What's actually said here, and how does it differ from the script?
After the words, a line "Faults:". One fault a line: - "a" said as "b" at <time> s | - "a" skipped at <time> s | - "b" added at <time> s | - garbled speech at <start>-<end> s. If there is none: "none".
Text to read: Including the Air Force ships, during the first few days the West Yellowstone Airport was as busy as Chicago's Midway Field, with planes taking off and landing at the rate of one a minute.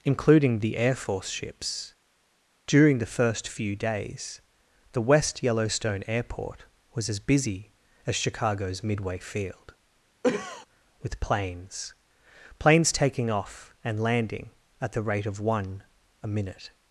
Including the Air Force ships, during the first few days the West Yellowstone Airport was as busy as Chicago's Midway Field, with planes planes taking off and landing at the rate of one a minute.
Faults:
- "planes" added at 12.6 s